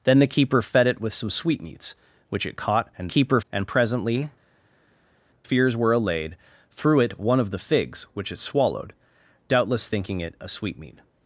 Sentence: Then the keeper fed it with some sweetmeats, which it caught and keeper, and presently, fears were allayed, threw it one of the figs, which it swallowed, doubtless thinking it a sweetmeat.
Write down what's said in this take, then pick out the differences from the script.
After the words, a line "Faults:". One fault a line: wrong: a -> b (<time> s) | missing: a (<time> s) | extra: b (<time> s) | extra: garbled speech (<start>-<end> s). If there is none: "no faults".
Then the keeper fed it with some sweetmeats, which it caught and keeper, and presently, fears were allayed, threw it one of the figs, which it swallowed, doubtless thinking it a sweetmeat.
Faults:
no faults